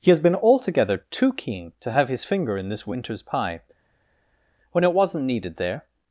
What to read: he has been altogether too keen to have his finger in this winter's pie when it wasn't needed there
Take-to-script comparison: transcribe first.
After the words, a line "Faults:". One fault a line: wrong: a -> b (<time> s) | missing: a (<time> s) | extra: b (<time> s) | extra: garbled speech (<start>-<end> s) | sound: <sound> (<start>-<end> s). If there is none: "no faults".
he has been altogether too keen to have his finger in this winter's pie when it wasn't needed there
Faults:
no faults